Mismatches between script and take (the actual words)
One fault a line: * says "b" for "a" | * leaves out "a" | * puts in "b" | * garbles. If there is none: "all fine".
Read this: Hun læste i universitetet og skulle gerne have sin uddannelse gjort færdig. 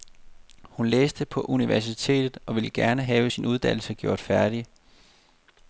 * says "på" for "i"
* says "ville" for "skulle"